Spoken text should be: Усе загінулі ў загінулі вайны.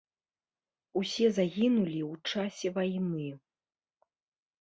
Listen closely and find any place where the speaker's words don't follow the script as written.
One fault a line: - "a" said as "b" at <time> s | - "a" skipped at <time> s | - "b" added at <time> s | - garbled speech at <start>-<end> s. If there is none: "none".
- "загінулі" said as "часе" at 2.3 s